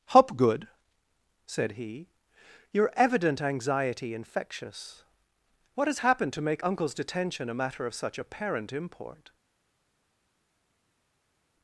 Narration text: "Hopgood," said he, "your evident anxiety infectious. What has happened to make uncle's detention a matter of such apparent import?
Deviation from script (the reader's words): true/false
false